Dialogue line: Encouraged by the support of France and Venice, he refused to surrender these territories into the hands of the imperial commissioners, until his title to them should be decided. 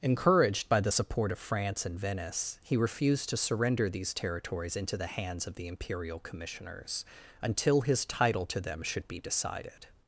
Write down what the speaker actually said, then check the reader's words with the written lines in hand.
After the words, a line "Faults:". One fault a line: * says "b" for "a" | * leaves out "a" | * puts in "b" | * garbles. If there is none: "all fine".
Encouraged by the support of France and Venice, he refused to surrender these territories into the hands of the imperial commissioners, until his title to them should be decided.
Faults:
all fine